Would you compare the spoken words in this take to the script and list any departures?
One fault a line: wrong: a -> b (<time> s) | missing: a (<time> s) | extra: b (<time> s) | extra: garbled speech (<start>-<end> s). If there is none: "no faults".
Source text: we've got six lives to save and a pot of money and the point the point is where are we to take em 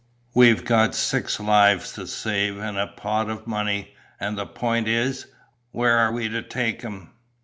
missing: the point (4.9 s)